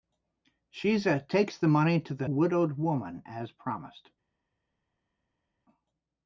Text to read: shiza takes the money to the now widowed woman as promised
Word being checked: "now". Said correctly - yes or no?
no